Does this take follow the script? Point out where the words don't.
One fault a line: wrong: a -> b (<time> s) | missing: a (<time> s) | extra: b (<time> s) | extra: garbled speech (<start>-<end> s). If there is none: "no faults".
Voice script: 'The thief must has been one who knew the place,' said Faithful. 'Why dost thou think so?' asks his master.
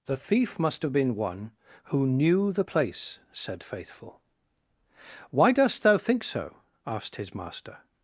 wrong: has -> have (0.8 s)
wrong: asks -> asked (6.8 s)